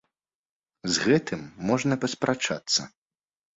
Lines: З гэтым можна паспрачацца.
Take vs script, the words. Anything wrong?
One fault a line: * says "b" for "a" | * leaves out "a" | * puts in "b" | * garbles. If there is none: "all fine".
all fine